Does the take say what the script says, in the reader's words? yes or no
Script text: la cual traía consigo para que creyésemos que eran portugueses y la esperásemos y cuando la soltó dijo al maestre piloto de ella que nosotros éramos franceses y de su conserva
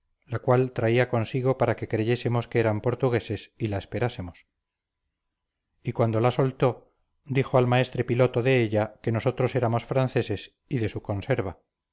yes